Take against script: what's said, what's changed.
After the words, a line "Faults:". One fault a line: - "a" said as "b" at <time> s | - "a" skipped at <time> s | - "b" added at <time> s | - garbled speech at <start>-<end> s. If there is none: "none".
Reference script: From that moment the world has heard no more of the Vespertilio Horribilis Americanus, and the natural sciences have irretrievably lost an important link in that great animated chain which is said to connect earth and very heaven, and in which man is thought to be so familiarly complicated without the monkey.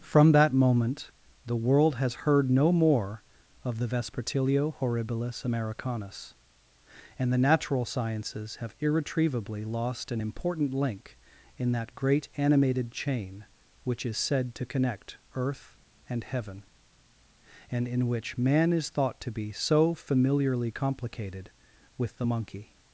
From that moment the world has heard no more of the Vespertilio Horribilis Americanus, and the natural sciences have irretrievably lost an important link in that great animated chain which is said to connect earth and heaven, and in which man is thought to be so familiarly complicated with the monkey.
Faults:
- "very" skipped at 16.2 s
- "without" said as "with" at 22.0 s